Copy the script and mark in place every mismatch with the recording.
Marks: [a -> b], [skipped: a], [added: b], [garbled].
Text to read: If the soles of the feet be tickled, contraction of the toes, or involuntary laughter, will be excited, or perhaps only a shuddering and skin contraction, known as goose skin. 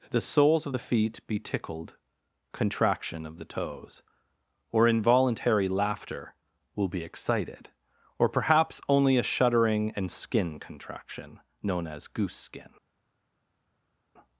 [skipped: If] the soles of the feet be tickled, contraction of the toes, or involuntary laughter, will be excited, or perhaps only a shuddering and skin contraction, known as goose skin.